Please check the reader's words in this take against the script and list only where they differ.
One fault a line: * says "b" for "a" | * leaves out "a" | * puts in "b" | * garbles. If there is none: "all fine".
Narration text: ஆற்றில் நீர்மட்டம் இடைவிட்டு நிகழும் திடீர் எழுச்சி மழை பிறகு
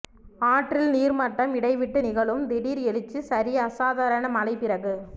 * puts in "சரி அசாதாரண"